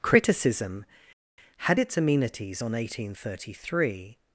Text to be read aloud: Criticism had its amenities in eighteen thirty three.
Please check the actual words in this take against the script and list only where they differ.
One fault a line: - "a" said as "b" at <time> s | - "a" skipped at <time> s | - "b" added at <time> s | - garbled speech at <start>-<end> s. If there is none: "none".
- "in" said as "on" at 2.6 s